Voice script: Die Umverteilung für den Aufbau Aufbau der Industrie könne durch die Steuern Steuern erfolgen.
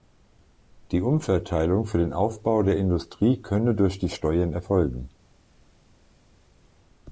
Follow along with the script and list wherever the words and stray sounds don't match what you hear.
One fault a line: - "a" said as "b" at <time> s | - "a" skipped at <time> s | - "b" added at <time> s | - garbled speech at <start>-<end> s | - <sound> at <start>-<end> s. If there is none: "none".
- "Aufbau" skipped at 2.6 s
- "Steuern" skipped at 4.5 s